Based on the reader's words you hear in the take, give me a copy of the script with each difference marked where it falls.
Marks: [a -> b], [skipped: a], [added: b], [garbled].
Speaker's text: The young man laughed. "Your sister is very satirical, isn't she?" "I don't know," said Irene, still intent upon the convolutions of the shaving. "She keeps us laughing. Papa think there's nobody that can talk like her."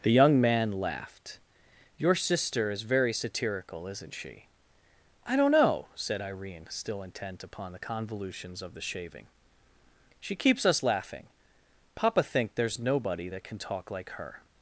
The young man laughed. "Your sister is very satirical, isn't she?" "I don't know," said Irene, still intent upon the convolutions of the shaving. "She keeps us laughing. Papa think there's nobody that can talk like her."